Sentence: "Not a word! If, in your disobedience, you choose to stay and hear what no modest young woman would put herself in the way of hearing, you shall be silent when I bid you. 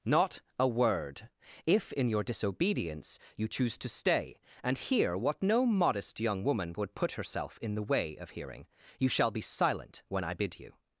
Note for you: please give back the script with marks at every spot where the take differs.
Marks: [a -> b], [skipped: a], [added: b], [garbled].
"Not a word! If, in your disobedience, you choose to stay and hear what no modest young woman would put herself in the way of hearing, you shall be silent when I bid you.